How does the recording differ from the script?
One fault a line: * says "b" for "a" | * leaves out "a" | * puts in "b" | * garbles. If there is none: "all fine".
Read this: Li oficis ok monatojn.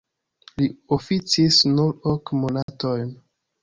* puts in "nur"